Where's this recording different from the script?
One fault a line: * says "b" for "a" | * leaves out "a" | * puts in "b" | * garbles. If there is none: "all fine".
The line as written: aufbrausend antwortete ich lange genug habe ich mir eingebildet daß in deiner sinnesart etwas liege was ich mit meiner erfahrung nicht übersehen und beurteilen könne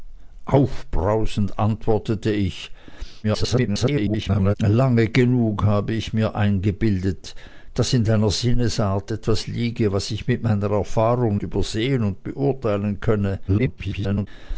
* garbles
* leaves out "nicht"
* garbles